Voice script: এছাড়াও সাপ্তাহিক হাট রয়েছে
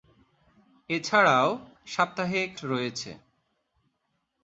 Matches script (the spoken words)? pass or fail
fail